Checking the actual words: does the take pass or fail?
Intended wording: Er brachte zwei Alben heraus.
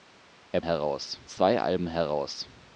fail